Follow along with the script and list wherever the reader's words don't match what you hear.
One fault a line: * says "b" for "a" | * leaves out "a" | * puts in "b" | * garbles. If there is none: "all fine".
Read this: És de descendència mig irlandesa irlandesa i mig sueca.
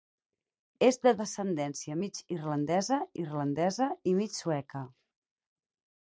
all fine